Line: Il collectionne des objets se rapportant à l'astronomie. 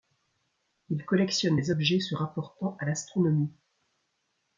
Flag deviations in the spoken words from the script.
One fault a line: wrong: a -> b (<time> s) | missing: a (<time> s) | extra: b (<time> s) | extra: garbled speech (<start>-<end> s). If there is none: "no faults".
no faults